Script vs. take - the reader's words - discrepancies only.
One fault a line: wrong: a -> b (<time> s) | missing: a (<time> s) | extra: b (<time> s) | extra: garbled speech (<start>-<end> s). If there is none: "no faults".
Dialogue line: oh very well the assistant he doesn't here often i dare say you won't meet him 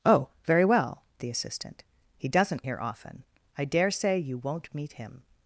no faults